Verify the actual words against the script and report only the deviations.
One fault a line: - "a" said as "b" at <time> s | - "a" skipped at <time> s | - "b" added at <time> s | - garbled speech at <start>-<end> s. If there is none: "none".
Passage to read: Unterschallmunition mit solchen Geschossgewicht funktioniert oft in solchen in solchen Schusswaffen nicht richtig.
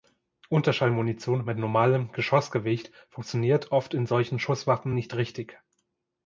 - "solchen" said as "normalem" at 1.6 s
- "in solchen" skipped at 4.4 s